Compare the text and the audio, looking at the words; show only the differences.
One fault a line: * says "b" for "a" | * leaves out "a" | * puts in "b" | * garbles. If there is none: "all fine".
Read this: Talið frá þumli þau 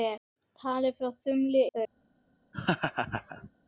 all fine